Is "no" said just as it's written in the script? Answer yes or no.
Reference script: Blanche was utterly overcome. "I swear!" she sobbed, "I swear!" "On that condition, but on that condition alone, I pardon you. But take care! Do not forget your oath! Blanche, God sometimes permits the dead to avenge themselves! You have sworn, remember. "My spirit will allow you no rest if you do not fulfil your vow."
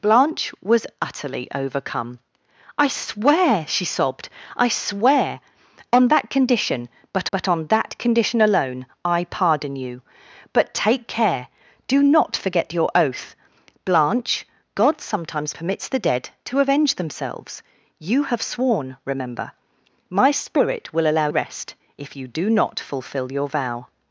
no